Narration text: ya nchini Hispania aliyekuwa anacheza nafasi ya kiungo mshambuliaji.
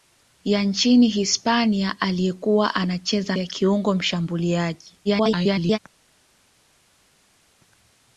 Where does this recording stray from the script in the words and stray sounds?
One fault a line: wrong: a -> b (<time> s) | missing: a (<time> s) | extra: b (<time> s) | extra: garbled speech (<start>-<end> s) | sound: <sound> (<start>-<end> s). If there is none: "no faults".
missing: nafasi (3.4 s)
extra: garbled speech (5.0-5.8 s)